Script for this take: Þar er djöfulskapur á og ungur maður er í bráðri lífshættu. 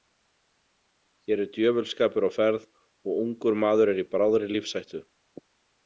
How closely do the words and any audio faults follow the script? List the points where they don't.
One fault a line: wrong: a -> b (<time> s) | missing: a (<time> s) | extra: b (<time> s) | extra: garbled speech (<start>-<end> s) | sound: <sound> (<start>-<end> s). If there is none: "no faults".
wrong: Þar -> Hér (1.2 s)
extra: ferð (2.4 s)